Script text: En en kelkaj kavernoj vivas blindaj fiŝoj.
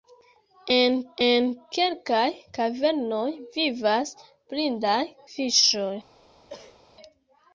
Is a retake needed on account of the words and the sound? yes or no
yes